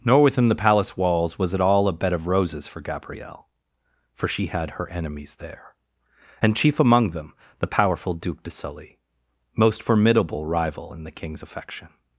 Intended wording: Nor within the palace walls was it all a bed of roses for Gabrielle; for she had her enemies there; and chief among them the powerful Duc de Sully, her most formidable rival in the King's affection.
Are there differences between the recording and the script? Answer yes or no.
yes